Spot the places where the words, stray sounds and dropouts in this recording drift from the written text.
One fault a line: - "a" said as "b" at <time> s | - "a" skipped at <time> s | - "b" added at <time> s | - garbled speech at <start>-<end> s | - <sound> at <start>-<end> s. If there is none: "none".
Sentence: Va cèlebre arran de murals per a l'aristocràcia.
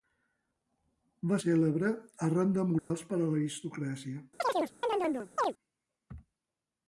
- dropout at 2.8-2.9 s
- chirp at 4.4-5.5 s